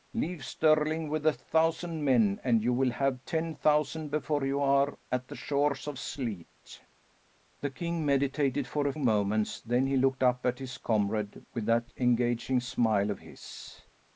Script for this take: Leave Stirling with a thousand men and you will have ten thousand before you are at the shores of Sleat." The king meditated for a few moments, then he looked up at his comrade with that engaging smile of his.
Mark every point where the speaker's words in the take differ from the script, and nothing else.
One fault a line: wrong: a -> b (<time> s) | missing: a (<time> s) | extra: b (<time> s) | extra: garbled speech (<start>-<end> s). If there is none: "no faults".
missing: few (8.9 s)